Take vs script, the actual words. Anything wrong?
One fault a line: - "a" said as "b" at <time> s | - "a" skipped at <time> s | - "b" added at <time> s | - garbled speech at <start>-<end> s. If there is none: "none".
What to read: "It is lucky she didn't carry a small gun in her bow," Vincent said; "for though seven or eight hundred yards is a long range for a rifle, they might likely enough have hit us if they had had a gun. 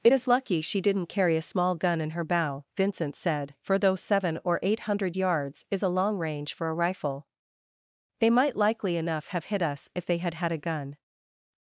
none